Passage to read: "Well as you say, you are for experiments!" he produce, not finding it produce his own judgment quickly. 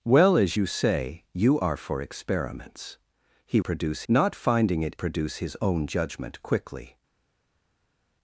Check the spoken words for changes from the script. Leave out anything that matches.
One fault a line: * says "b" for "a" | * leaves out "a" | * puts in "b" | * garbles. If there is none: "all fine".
all fine